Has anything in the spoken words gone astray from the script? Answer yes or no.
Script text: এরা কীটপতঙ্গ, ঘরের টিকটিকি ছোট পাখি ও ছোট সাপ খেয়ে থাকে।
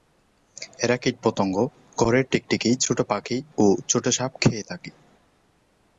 no